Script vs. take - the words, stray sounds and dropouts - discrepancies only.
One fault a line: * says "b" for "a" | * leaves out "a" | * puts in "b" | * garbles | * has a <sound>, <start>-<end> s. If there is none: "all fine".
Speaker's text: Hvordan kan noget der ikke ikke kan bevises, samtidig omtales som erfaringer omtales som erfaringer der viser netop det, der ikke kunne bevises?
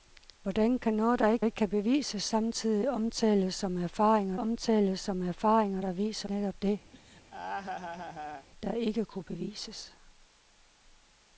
* has a laugh, 6.9-8.5 s